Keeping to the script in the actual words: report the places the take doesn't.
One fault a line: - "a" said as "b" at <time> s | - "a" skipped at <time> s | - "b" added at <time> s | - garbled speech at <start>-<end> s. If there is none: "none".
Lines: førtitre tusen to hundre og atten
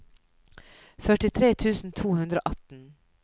none